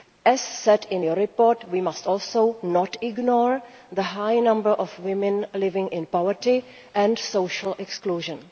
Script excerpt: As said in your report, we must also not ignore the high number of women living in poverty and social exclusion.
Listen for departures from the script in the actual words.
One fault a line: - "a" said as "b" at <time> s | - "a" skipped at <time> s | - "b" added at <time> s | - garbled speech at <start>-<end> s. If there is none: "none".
none